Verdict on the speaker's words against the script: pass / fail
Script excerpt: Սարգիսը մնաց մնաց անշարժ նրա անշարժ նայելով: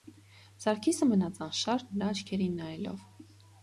fail